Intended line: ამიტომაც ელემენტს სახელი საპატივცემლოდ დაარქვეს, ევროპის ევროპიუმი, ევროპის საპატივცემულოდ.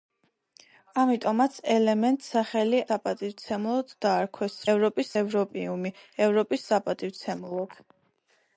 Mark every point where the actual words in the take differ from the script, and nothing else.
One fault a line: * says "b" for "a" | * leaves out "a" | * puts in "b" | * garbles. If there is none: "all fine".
all fine